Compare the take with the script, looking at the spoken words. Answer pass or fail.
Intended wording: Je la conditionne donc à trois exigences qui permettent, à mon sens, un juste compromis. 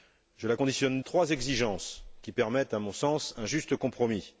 fail